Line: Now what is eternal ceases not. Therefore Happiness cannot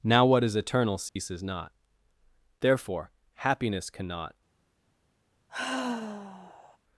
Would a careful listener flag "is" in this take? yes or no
no